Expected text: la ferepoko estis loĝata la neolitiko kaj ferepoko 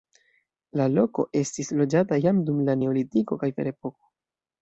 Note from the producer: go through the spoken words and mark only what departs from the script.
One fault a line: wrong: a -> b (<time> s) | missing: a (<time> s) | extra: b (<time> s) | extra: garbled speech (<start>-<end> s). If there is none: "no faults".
wrong: ferepoko -> loko (0.9 s)
extra: jam dum (2.2 s)